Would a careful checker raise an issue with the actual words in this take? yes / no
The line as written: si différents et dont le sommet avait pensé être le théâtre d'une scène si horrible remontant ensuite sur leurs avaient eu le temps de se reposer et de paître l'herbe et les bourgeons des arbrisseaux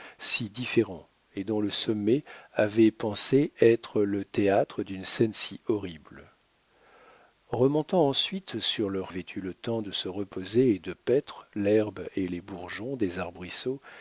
no